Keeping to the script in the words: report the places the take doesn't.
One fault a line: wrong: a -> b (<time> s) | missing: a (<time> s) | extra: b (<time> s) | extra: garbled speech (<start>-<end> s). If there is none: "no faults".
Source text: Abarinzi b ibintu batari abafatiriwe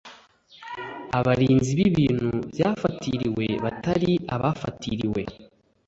extra: byafatiriwe (2.5 s)